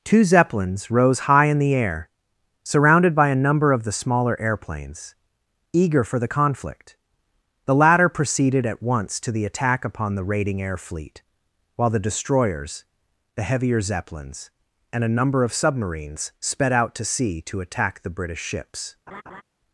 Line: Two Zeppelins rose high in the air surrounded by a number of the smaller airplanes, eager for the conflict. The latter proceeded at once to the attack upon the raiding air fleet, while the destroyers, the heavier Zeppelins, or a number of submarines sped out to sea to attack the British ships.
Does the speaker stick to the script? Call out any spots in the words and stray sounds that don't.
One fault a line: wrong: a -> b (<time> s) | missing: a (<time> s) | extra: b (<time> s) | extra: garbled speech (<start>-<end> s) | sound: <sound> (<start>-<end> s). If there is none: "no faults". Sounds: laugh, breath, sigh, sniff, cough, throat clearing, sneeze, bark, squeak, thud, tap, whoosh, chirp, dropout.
wrong: or -> and (14.9 s)
sound: laugh (19.1-19.4 s)